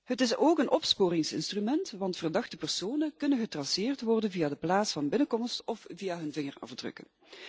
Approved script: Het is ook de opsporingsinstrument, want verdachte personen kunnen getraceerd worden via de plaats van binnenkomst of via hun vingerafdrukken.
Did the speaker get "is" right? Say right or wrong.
right